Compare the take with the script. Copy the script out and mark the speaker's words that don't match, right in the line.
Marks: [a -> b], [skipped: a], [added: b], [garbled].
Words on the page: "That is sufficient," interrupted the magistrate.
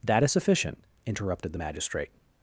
"That is sufficient," interrupted the magistrate.